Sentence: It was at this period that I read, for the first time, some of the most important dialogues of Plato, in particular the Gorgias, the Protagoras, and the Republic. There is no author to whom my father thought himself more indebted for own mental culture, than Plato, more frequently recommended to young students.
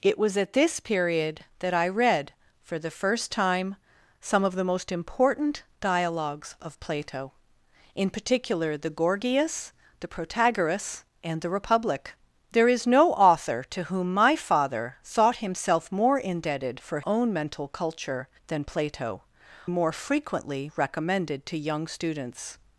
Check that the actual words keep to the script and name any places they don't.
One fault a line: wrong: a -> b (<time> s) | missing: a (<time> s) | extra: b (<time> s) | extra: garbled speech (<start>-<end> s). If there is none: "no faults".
no faults